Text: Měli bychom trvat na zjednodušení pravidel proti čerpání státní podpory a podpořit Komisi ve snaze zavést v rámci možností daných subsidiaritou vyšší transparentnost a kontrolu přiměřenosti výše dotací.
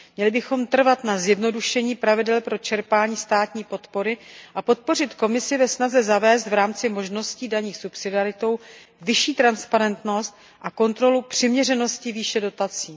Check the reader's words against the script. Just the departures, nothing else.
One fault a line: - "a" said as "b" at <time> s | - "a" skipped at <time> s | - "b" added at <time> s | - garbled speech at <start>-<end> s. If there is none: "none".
- "proti" said as "pro" at 2.4 s